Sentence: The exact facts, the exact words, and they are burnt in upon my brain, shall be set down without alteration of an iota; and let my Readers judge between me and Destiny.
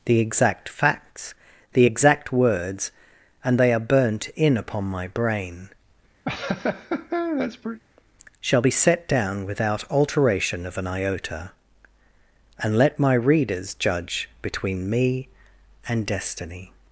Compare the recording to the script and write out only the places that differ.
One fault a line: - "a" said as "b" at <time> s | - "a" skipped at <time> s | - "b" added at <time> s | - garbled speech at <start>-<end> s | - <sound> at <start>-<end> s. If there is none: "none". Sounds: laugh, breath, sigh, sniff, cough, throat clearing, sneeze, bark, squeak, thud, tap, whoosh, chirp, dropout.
- laugh at 6.3-7.8 s